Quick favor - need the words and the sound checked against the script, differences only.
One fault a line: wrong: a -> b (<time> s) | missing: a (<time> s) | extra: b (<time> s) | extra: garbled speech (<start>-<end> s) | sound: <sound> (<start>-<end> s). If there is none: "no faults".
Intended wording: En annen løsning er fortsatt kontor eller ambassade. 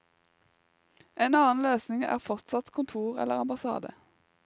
no faults